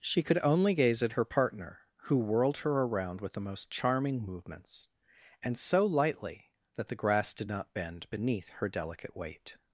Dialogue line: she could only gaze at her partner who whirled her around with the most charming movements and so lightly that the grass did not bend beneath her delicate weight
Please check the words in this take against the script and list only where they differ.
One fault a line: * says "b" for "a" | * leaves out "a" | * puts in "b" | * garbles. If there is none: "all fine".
all fine